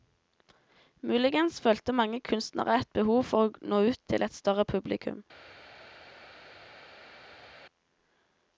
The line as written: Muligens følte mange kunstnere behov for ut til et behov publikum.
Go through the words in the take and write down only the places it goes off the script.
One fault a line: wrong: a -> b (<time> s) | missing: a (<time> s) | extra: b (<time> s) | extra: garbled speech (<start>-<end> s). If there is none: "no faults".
extra: et (2.8 s)
extra: å nå (3.5 s)
wrong: behov -> større (4.3 s)